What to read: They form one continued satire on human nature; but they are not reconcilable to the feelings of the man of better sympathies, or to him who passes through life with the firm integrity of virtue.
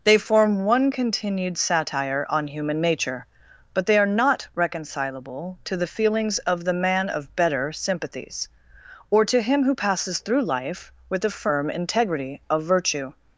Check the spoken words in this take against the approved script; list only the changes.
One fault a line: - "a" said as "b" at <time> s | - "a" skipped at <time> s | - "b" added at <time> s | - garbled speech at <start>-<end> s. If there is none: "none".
none